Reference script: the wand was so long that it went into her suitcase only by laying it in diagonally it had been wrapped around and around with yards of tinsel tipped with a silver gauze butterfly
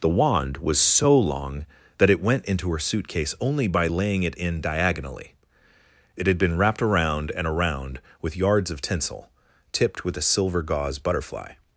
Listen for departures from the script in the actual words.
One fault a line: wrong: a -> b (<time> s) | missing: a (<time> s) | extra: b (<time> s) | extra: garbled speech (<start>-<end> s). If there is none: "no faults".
no faults